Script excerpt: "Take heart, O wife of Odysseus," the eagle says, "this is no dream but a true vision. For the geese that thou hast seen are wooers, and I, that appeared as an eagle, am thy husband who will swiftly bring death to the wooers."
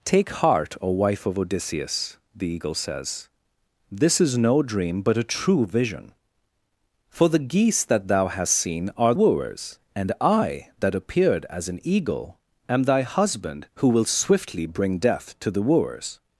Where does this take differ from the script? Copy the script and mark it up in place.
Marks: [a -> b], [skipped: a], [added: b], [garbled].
"Take heart, O wife of Odysseus," the eagle says, "this is no dream but a true vision. For the geese that thou hast seen are wooers, and I, that appeared as an eagle, am thy husband who will swiftly bring death to the wooers."